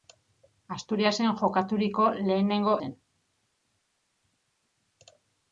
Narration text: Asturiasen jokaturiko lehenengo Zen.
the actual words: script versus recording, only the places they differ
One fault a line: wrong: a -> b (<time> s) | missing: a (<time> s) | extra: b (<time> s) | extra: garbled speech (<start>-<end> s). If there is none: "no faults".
no faults